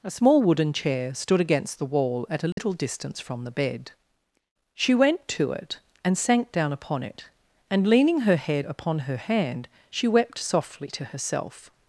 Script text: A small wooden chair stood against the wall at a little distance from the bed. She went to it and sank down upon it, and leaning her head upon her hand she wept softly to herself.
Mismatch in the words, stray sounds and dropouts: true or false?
true